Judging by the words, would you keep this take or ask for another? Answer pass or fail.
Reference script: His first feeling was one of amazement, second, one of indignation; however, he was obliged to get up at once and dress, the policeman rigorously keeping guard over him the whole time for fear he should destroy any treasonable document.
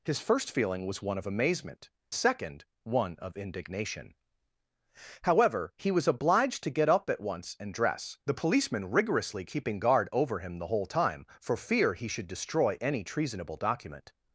pass